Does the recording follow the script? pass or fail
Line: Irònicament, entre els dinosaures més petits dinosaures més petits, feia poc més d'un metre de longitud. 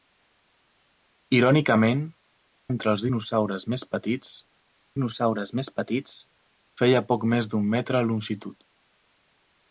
pass